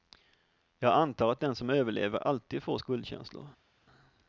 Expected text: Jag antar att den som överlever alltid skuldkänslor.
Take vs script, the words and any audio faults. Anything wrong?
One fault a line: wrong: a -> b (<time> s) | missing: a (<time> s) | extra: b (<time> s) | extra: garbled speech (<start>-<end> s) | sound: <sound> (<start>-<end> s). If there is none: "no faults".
extra: får (2.6 s)